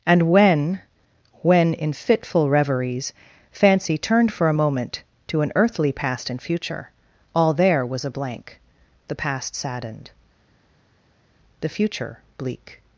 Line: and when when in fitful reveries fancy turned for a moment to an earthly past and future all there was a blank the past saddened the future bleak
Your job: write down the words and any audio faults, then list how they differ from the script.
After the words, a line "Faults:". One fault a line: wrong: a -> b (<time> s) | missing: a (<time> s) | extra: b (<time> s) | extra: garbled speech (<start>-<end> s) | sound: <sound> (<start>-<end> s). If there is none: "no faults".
and when when in fitful reveries fancy turned for a moment to an earthly past and future all there was a blank the past saddened the future bleak
Faults:
no faults